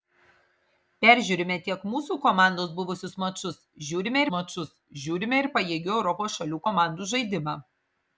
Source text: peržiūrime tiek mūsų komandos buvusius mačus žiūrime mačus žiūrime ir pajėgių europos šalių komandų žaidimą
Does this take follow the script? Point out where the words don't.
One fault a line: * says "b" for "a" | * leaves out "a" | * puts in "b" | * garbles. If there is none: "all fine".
all fine